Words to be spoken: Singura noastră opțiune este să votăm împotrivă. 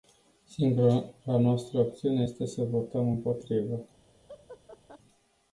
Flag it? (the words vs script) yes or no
no